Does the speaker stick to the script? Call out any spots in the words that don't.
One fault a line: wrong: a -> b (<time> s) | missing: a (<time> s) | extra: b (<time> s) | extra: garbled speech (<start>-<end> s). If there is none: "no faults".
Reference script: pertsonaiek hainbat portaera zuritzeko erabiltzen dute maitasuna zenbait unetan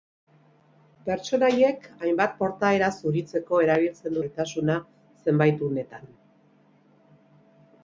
missing: dute (4.2 s)